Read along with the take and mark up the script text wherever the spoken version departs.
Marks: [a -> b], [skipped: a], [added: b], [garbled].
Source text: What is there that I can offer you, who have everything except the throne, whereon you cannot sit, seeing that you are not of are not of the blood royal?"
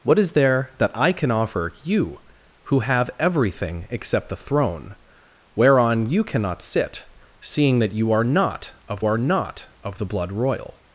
What is there that I can offer you, who have everything except the throne, whereon you cannot sit, seeing that you are not of are not of the blood royal?"